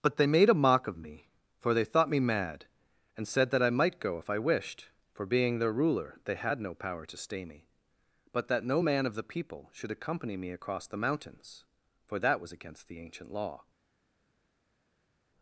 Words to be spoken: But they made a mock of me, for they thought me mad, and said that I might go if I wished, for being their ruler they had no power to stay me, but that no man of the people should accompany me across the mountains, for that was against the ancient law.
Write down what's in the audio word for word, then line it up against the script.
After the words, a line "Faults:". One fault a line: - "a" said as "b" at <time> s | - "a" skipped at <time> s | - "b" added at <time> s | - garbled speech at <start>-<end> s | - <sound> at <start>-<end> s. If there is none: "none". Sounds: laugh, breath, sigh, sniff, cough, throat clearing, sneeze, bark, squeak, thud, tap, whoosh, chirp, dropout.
But they made a mock of me, for they thought me mad, and said that I might go if I wished, for being their ruler they had no power to stay me, but that no man of the people should accompany me across the mountains, for that was against the ancient law.
Faults:
none